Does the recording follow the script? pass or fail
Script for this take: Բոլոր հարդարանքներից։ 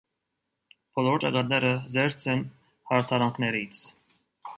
fail